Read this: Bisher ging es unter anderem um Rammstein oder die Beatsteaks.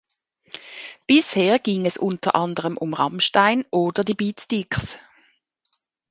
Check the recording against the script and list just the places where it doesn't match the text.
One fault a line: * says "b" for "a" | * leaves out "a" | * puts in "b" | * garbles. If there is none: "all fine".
all fine